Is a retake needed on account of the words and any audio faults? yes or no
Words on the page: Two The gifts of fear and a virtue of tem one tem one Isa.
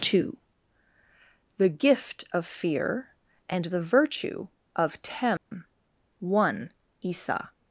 yes